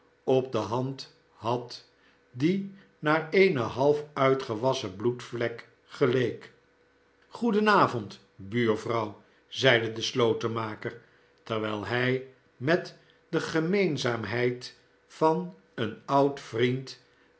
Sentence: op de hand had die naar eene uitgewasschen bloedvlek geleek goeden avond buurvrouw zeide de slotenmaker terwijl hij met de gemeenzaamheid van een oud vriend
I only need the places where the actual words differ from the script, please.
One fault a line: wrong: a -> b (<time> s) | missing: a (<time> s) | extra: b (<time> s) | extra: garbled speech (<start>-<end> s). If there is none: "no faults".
extra: half (3.6 s)